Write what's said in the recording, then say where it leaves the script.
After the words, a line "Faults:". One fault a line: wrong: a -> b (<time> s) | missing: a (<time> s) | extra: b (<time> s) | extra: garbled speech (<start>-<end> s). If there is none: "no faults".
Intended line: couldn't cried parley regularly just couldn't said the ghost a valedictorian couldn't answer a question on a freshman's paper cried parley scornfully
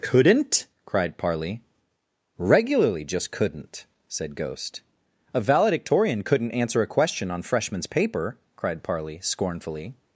couldn't cried parley regularly just couldn't said ghost a valedictorian couldn't answer a question on freshman's paper cried parley scornfully
Faults:
missing: the (4.3 s)
missing: a (7.4 s)